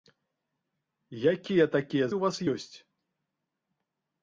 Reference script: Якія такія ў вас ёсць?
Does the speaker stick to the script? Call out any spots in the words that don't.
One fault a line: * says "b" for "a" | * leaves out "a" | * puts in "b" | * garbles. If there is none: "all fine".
all fine